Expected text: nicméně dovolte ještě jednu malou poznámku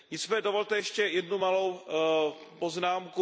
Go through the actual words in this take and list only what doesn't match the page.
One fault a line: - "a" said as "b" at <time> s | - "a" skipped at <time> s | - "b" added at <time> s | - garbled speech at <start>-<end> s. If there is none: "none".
none